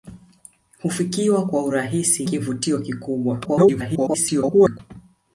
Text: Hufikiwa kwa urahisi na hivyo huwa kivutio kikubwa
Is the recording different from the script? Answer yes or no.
yes